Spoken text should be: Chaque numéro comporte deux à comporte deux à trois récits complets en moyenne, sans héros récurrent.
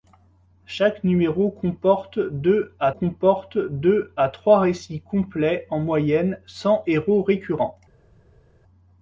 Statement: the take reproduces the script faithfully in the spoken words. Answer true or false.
true